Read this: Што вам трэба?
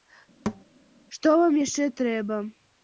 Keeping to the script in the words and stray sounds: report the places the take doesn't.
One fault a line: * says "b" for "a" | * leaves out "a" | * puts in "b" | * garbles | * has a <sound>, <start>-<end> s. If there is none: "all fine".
* has a thud, 0.5-0.6 s
* puts in "яшчэ"